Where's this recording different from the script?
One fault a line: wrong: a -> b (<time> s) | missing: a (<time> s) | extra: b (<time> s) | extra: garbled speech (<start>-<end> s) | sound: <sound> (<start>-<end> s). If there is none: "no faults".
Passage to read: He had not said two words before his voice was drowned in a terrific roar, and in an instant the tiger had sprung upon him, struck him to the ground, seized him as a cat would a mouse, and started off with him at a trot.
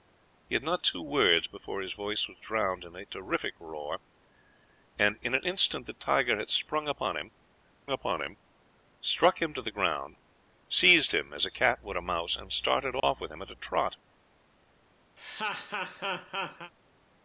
missing: said (0.8 s)
extra: upon him (7.9 s)
sound: dropout (13.0-13.0 s)
sound: laugh (15.2-16.7 s)